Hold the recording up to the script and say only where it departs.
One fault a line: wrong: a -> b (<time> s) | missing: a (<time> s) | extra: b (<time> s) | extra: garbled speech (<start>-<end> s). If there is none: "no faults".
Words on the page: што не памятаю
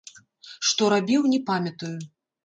extra: рабіў (0.9 s)